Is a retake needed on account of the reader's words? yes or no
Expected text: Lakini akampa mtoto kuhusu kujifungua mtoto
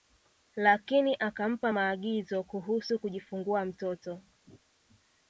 yes